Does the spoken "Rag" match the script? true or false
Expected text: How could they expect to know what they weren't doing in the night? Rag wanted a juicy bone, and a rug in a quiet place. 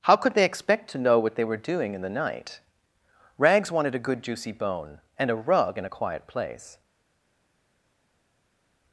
false